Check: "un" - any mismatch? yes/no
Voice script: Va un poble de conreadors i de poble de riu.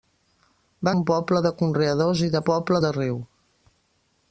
no